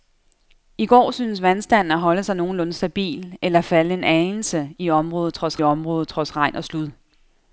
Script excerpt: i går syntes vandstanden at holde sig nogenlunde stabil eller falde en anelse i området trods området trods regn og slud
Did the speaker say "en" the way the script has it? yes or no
yes